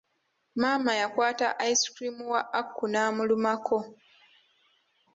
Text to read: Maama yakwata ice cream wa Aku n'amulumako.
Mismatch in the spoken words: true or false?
false